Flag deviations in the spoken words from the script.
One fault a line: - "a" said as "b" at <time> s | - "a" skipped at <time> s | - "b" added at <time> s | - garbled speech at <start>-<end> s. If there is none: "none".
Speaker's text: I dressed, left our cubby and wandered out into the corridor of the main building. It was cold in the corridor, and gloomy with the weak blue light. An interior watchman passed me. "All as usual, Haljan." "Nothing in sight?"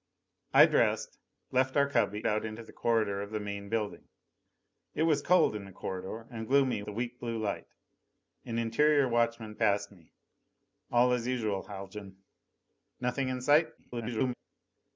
- "and wandered" skipped at 2.3 s
- "with" skipped at 6.8 s
- garbled speech at 13.8-14.3 s